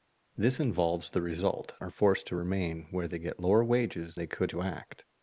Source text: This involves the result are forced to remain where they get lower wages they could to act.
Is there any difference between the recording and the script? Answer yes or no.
no